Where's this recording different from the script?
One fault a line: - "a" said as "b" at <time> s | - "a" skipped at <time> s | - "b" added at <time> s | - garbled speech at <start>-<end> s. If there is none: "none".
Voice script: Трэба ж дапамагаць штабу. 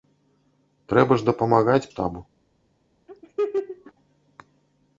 none